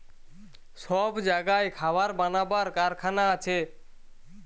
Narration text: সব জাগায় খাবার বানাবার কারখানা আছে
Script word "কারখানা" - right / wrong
right